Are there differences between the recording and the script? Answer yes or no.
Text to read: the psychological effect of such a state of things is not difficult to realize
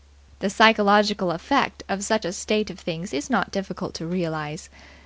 no